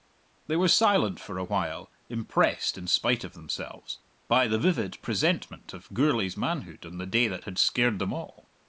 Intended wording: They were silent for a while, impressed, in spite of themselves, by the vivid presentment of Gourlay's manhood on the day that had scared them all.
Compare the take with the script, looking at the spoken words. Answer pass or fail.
pass